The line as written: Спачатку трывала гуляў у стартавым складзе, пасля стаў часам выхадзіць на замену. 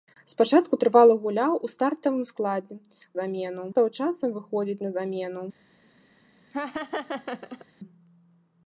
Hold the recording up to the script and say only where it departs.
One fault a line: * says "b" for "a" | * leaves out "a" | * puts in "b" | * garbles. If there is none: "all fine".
* says "замену" for "пасля"